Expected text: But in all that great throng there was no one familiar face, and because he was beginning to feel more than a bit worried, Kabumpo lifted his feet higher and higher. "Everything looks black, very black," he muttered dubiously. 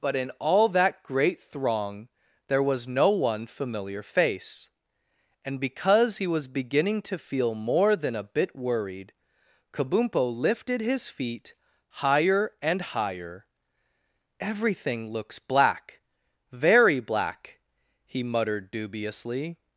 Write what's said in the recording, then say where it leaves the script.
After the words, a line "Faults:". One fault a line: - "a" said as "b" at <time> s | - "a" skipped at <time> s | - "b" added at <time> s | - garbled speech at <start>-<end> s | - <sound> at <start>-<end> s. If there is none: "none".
But in all that great throng there was no one familiar face, and because he was beginning to feel more than a bit worried, Kabumpo lifted his feet higher and higher. "Everything looks black, very black," he muttered dubiously.
Faults:
none